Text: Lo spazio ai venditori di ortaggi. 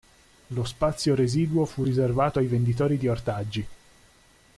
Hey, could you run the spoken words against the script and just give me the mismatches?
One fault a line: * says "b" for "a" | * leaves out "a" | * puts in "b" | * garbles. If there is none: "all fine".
* puts in "residuo fu riservato"